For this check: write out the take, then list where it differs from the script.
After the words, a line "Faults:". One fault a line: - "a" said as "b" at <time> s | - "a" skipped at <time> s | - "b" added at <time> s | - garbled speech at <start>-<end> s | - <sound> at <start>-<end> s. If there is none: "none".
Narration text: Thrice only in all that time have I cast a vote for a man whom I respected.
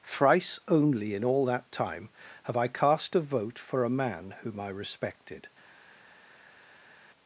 Thrice only in all that time have I cast a vote for a man whom I respected.
Faults:
none